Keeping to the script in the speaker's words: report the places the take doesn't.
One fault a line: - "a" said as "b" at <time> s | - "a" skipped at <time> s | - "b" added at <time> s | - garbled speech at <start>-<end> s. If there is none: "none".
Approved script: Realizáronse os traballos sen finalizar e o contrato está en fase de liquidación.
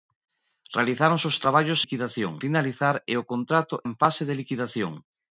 - "sen" said as "liquidación" at 1.8 s
- "está" skipped at 3.7 s